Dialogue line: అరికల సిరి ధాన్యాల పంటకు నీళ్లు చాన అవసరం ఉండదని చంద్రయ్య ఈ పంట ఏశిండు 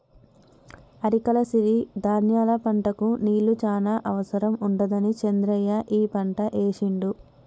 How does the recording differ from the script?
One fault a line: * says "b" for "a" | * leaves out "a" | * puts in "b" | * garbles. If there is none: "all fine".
all fine